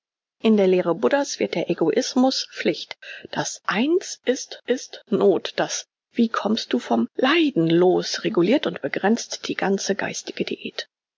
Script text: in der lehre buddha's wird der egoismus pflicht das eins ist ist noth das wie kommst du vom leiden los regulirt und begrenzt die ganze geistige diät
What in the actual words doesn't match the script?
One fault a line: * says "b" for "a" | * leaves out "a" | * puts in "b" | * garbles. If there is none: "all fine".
all fine